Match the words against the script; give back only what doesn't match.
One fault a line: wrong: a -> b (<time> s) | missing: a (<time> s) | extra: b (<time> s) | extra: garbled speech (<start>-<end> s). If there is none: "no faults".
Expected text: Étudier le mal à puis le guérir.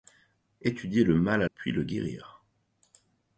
no faults